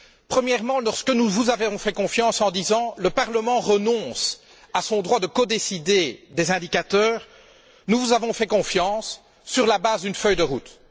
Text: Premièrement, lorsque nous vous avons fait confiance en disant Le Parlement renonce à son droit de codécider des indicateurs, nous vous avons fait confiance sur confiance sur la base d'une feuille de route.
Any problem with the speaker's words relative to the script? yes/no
yes